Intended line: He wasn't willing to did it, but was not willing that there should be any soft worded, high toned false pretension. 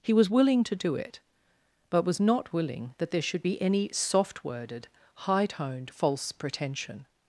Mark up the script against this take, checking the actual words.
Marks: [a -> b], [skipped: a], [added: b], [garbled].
He [wasn't -> was] willing to [did -> do] it, but was not willing that there should be any soft worded, high toned false pretension.